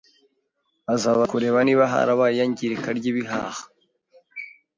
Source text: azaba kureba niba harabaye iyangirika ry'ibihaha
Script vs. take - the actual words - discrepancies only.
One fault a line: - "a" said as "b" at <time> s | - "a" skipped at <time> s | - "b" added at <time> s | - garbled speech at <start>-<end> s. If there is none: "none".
none